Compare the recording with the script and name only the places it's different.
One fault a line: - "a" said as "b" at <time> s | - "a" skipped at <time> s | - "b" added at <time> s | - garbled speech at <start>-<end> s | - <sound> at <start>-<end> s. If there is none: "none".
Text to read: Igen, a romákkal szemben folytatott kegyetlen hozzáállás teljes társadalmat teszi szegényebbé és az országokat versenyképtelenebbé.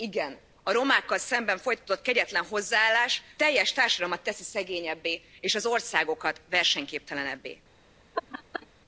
- laugh at 8.1-8.7 s